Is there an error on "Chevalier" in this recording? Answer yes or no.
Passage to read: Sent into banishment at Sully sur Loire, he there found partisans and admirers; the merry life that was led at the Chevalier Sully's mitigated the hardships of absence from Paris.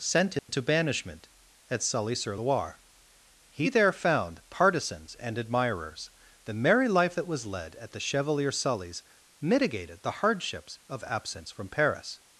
no